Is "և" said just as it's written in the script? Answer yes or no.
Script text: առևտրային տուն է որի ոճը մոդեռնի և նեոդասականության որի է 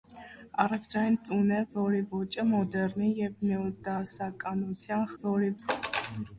yes